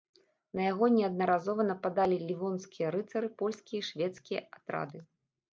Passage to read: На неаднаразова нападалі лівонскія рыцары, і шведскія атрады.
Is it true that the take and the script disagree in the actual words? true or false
true